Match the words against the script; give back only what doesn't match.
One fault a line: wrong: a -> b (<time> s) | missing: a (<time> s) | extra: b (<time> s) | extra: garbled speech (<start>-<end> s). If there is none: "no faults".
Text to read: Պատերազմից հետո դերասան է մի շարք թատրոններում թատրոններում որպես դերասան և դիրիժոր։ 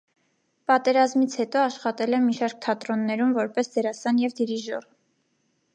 wrong: դերասան -> աշխատել (1.6 s)
missing: թատրոններում (3.3 s)